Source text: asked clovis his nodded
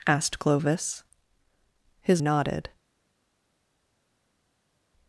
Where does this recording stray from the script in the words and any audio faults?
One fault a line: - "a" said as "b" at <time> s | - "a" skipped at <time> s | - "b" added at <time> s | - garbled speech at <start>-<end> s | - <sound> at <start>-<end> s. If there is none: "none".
none